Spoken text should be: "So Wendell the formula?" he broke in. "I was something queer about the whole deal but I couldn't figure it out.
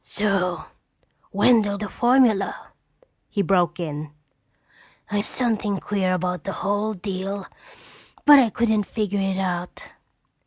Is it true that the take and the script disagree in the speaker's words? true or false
false